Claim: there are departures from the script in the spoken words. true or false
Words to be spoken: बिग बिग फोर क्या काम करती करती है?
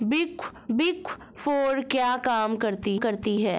false